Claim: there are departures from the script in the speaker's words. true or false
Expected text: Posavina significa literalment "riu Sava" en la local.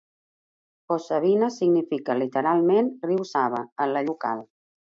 false